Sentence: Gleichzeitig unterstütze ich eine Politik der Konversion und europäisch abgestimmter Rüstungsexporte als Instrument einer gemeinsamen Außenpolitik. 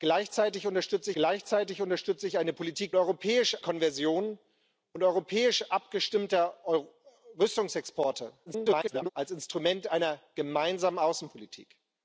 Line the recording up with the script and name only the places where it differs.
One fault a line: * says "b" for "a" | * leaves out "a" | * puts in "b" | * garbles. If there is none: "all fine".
* puts in "gleichzeitig unterstütze"
* says "europäisch" for "der"
* garbles